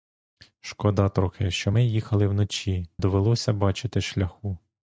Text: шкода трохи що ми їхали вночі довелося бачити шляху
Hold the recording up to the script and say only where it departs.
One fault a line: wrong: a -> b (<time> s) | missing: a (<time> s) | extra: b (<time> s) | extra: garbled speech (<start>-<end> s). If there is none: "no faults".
no faults